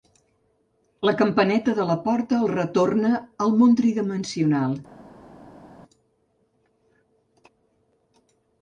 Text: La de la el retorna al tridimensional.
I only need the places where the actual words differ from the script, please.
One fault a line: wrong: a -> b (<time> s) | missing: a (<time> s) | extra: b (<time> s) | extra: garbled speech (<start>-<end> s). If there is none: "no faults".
extra: campaneta (1.2 s)
extra: porta (2.1 s)
extra: món (3.6 s)